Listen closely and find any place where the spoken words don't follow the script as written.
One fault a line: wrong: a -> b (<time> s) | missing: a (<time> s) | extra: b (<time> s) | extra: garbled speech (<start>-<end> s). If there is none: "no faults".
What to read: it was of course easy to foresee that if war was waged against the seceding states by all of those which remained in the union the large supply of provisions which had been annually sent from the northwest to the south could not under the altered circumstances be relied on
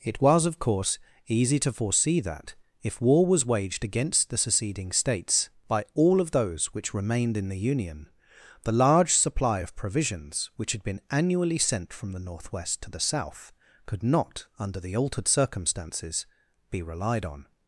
no faults